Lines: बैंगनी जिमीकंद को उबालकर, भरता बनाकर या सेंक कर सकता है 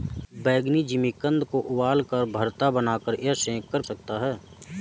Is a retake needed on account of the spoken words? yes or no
no